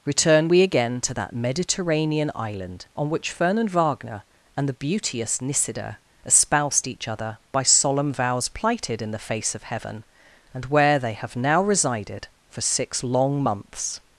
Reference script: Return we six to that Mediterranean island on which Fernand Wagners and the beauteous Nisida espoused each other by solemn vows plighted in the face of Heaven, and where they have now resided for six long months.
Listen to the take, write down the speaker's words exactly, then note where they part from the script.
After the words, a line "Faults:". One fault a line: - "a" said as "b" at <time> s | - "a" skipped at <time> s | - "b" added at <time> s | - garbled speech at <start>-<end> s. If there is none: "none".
Return we again to that Mediterranean island on which Fernand Wagner and the beauteous Nisida espoused each other by solemn vows plighted in the face of Heaven, and where they have now resided for six long months.
Faults:
- "six" said as "again" at 0.6 s
- "Wagners" said as "Wagner" at 3.7 s